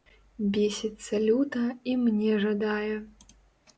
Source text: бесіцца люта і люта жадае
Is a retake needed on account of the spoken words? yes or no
yes